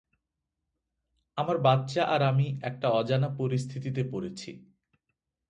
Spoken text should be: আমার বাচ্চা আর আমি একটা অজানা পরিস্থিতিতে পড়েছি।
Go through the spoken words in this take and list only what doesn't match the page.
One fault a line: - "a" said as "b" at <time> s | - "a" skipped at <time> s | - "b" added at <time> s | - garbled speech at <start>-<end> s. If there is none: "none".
none